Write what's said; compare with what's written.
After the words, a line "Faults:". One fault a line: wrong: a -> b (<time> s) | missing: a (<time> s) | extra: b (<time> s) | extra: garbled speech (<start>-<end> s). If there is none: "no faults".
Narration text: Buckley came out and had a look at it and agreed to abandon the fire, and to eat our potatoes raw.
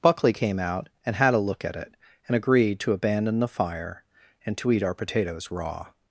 Buckley came out and had a look at it and agreed to abandon the fire, and to eat our potatoes raw.
Faults:
no faults